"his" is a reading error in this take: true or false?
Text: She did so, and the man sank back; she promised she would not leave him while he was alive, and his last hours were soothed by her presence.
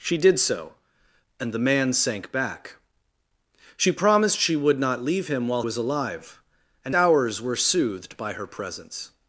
true